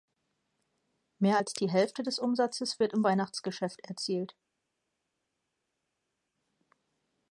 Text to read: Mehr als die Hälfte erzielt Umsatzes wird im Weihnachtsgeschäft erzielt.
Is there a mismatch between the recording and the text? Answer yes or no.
yes